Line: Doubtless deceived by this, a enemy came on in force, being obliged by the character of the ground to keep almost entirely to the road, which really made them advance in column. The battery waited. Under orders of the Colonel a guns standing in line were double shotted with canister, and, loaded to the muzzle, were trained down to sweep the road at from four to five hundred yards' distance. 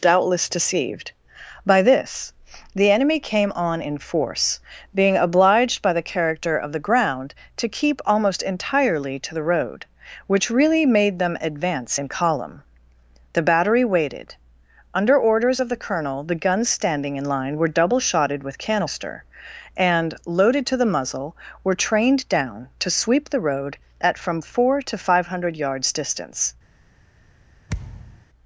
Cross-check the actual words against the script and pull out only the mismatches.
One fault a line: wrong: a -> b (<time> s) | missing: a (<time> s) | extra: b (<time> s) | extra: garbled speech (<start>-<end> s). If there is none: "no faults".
wrong: a -> the (2.7 s)
wrong: a -> the (16.2 s)